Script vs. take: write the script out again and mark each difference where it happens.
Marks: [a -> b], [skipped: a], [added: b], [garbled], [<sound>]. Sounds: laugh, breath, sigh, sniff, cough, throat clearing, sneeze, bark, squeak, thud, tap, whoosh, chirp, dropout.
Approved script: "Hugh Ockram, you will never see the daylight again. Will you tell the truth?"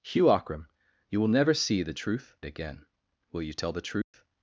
"Hugh Ockram, you will never see the [daylight -> truth] again. Will you tell the truth?" [dropout]